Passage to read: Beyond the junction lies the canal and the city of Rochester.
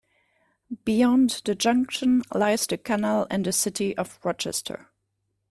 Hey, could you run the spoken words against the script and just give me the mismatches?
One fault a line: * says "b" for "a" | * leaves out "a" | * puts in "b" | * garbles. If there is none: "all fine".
all fine